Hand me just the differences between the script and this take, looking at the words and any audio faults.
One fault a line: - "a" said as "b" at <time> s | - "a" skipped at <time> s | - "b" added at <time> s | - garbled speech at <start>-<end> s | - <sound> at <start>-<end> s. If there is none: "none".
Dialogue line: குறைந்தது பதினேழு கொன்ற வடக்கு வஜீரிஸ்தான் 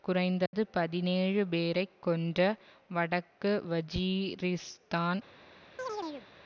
- dropout at 0.5-0.5 s
- "பேரை" added at 1.5 s
- chirp at 5.8-6.3 s